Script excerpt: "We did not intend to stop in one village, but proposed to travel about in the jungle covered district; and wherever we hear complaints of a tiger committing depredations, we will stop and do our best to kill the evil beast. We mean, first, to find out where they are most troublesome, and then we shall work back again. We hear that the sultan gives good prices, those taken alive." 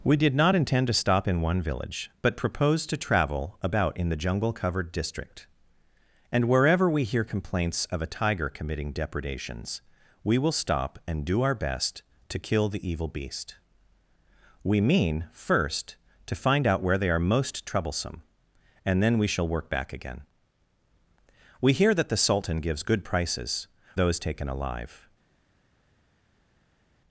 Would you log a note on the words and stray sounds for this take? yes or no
no